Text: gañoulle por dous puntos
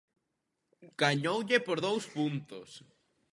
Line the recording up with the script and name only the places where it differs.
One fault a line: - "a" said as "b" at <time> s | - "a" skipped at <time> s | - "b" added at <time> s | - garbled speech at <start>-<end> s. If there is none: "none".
none